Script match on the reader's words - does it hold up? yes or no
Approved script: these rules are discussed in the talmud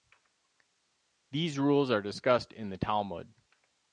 yes